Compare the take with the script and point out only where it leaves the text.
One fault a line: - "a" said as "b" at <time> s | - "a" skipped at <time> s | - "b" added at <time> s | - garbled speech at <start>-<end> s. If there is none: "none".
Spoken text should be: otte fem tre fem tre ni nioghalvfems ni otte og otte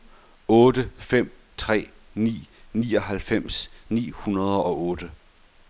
- "fem tre" skipped at 1.9 s
- "otte" said as "hundrede" at 4.1 s